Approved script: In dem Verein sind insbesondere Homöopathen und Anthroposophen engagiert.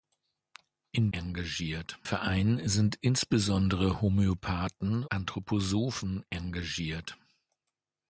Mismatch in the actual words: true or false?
true